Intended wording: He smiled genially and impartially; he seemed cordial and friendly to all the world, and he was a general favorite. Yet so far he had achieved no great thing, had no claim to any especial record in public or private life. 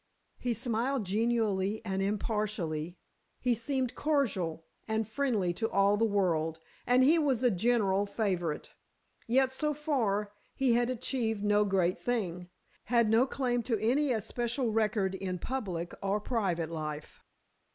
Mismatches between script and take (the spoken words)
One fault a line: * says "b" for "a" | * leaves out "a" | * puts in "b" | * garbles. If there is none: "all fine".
all fine